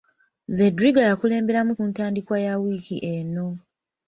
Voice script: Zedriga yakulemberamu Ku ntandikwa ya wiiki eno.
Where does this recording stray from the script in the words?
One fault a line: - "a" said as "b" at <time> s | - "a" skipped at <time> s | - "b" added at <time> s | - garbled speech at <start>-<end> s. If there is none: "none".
none